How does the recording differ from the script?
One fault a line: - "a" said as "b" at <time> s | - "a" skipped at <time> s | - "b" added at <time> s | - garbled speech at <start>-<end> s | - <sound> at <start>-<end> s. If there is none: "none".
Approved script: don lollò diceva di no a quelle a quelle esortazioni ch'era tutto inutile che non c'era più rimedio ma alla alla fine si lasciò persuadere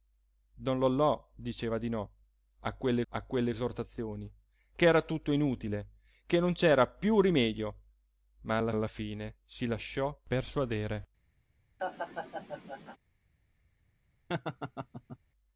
- laugh at 11.8-13.0 s
- laugh at 14.3-15.2 s